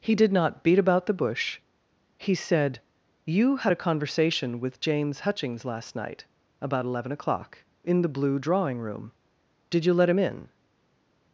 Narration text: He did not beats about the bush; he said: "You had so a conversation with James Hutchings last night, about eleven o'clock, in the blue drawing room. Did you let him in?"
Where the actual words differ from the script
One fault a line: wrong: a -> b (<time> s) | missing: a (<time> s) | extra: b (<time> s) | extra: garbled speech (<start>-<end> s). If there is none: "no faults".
wrong: beats -> beat (0.6 s)
missing: so (3.7 s)